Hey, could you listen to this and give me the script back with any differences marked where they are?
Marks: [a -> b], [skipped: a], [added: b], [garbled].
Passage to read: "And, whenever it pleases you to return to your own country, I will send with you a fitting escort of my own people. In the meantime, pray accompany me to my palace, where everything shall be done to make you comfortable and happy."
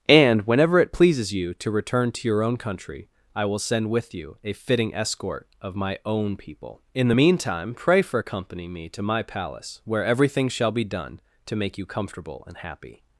"And, whenever it pleases you to return to your own country, I will send with you a fitting escort of my own people. In the meantime, pray [added: for] accompany me to my palace, where everything shall be done to make you comfortable and happy."